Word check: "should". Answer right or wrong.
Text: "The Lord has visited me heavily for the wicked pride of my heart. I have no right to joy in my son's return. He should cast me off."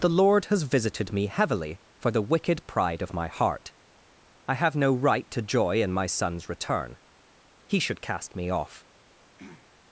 right